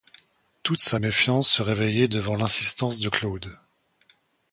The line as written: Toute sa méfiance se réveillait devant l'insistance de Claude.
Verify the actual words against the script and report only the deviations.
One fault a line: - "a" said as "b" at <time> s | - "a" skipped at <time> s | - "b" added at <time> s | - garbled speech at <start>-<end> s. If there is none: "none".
none